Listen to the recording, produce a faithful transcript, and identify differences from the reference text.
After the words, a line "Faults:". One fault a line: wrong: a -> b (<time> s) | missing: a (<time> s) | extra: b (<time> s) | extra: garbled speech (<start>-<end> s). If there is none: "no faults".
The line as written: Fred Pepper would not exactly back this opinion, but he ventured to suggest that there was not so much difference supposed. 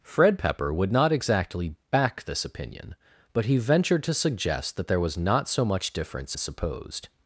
Fred Pepper would not exactly back this opinion, but he ventured to suggest that there was not so much difference supposed.
Faults:
no faults